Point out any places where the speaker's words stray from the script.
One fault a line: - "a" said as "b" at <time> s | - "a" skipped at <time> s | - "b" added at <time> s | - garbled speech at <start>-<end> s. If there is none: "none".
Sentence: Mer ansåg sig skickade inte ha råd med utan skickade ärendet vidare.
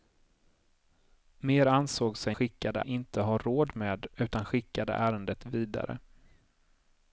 none